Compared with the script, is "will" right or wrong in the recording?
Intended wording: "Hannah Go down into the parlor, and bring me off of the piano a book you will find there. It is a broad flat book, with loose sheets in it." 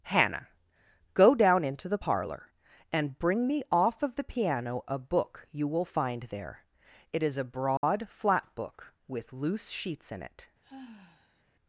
right